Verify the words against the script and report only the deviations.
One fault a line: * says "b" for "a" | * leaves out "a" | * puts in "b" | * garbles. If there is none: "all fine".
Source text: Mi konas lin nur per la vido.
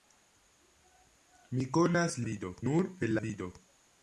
* says "vido" for "lin"
* leaves out "la"